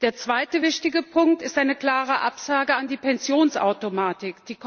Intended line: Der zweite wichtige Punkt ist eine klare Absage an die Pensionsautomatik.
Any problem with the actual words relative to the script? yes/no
no